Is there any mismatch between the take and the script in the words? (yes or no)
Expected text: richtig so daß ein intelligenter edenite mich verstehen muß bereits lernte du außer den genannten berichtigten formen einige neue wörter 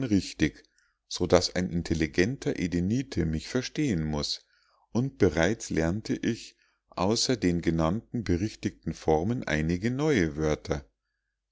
yes